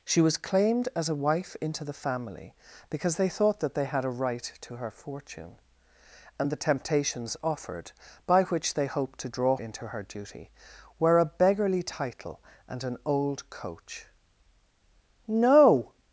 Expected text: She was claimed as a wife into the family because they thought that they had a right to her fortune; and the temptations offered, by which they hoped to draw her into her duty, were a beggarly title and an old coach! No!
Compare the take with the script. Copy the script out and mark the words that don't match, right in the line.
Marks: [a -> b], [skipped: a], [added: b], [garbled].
She was claimed as a wife into the family because they thought that they had a right to her fortune; and the temptations offered, by which they hoped to draw [skipped: her] into her duty, were a beggarly title and an old coach! No!